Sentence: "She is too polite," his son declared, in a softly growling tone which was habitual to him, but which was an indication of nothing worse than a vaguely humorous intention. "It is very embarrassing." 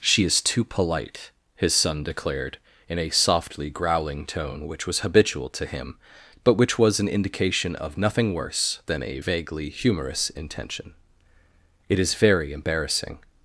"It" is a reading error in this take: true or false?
false